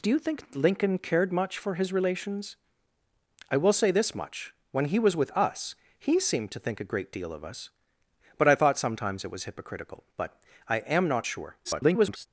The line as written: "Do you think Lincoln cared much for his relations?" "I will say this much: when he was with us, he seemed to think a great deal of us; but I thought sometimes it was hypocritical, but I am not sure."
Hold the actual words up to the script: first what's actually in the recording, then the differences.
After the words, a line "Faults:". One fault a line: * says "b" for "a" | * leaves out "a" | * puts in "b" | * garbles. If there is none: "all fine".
"Do you think Lincoln cared much for his relations?" "I will say this much: when he was with us, he seemed to think a great deal of us; but I thought sometimes it was hypocritical, but I am not sure." [garbled]
Faults:
* garbles